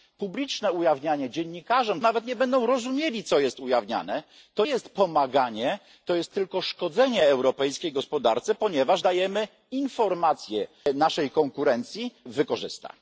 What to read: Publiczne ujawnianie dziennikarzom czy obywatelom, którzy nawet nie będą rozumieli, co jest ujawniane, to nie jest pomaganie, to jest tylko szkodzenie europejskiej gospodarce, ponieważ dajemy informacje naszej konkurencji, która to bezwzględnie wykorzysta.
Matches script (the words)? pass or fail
fail